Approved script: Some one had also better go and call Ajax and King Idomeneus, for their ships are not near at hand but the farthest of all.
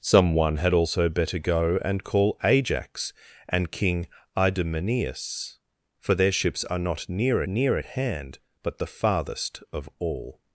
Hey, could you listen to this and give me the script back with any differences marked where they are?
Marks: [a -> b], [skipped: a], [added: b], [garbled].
Some one had also better go and call Ajax and King Idomeneus, for their ships are not near [added: near] at hand but the farthest of all.